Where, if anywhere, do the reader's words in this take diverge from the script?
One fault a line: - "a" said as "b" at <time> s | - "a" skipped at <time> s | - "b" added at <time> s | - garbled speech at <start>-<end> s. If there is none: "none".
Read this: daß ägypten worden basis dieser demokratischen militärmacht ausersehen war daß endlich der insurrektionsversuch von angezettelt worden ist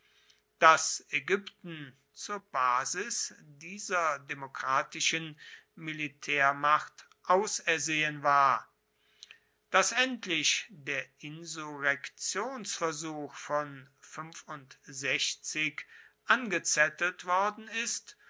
- "worden" said as "zur" at 2.1 s